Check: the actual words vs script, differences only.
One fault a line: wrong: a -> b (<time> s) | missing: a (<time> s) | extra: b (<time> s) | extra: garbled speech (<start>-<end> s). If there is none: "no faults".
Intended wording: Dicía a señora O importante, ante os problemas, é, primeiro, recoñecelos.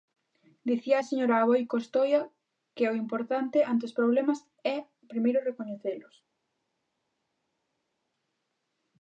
extra: Aboi Costoia que (1.4 s)